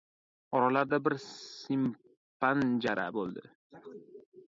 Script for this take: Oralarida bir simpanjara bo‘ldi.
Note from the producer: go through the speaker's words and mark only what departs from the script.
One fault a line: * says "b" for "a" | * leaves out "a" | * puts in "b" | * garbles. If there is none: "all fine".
all fine